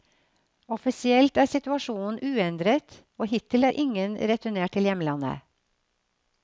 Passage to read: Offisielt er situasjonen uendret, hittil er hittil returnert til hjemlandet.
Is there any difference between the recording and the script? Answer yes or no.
yes